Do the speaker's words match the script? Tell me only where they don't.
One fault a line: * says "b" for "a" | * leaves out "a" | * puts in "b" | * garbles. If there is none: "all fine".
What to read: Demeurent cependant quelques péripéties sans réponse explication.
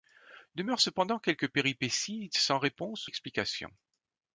all fine